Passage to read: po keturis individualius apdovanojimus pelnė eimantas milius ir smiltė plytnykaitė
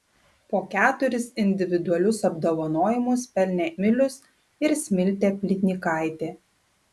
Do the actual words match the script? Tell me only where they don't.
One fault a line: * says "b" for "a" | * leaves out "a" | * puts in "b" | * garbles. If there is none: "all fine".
* leaves out "eimantas"